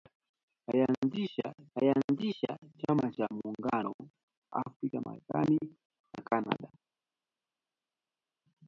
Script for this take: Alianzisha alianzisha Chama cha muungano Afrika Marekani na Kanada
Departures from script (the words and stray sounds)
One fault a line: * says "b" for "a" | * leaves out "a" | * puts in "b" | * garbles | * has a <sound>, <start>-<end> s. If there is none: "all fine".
all fine